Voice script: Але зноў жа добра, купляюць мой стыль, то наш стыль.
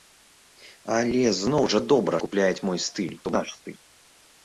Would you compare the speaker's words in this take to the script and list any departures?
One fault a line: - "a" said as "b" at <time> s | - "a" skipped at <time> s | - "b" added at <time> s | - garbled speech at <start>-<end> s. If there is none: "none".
none